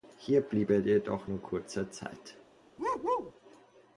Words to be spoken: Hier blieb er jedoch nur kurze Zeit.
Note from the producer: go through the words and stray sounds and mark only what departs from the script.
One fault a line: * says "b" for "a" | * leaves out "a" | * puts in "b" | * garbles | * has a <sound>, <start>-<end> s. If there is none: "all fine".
* has a bark, 2.8-3.3 s